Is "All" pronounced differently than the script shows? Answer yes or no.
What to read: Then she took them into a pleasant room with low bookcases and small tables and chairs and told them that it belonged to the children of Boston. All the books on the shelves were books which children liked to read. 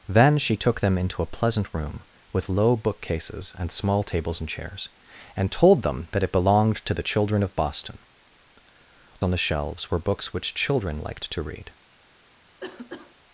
yes